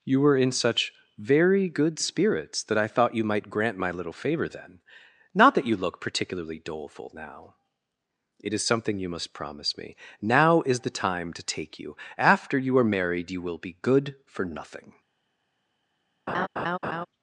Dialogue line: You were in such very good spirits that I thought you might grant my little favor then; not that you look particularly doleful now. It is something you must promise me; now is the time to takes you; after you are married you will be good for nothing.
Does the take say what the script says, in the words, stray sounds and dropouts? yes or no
no